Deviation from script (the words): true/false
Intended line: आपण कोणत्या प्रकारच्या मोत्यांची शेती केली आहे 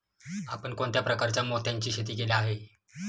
false